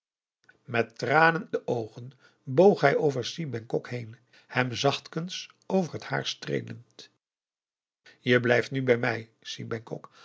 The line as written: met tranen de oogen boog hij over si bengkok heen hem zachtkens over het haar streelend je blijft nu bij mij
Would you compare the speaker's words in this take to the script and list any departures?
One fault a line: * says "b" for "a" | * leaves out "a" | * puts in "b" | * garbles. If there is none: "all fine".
all fine